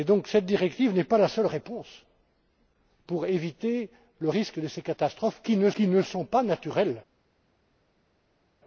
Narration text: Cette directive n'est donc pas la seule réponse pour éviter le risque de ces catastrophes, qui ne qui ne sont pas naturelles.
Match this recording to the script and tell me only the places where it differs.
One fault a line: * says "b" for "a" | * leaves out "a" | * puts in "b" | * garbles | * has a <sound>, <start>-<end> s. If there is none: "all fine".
all fine